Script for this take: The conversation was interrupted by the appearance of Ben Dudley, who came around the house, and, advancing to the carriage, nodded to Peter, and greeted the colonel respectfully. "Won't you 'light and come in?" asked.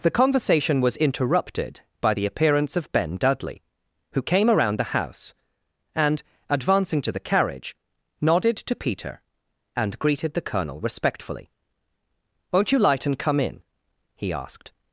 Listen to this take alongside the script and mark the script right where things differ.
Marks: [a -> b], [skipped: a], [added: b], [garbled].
The conversation was interrupted by the appearance of Ben Dudley, who came around the house, and, advancing to the carriage, nodded to Peter, and greeted the colonel respectfully. "Won't you 'light and come in?" [added: he] asked.